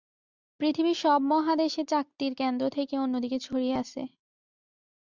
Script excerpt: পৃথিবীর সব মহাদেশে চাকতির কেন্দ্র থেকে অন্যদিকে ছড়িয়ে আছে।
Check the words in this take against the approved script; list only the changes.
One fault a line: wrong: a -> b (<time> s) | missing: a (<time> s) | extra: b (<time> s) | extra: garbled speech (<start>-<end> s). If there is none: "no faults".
no faults